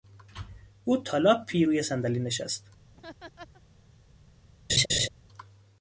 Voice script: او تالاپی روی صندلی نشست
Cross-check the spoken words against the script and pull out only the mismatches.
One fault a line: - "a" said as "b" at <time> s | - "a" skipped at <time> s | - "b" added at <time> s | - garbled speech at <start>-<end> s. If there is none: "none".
none